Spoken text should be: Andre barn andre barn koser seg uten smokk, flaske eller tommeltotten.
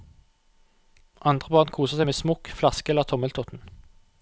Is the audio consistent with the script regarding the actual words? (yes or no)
no